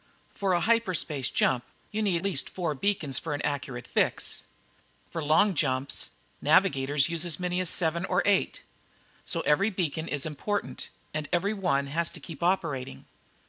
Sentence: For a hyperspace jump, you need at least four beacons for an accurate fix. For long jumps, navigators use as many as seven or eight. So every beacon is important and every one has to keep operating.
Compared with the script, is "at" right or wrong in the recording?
wrong